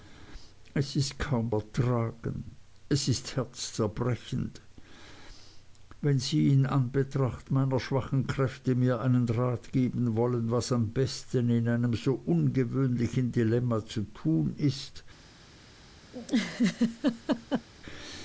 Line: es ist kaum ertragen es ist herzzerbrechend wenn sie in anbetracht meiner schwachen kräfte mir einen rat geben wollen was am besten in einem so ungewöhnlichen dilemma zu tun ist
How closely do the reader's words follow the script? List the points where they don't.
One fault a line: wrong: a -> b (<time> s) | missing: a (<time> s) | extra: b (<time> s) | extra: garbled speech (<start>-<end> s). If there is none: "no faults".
no faults